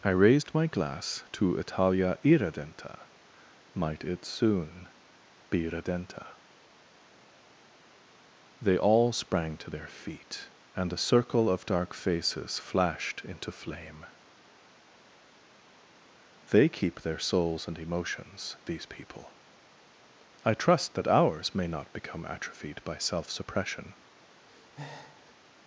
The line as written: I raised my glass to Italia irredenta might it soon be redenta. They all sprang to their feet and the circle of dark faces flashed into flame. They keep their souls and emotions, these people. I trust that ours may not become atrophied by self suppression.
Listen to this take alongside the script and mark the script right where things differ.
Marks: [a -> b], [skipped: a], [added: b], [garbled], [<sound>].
I raised my glass to Italia irredenta might it soon be redenta. They all sprang to their feet and [the -> a] circle of dark faces flashed into flame. They keep their souls and emotions, these people. I trust that ours may not become atrophied by self suppression. [breath]